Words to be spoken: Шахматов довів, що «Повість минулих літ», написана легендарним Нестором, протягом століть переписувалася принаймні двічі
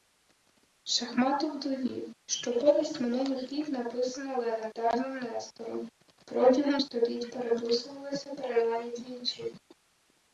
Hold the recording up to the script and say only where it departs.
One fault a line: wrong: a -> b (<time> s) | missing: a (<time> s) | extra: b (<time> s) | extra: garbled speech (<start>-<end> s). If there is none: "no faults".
no faults